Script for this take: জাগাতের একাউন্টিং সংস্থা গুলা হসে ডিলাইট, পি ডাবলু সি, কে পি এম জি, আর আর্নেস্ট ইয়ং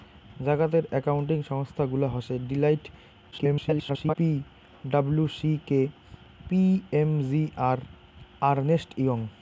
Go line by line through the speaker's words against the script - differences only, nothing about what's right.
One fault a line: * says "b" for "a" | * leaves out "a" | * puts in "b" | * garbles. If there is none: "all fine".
* garbles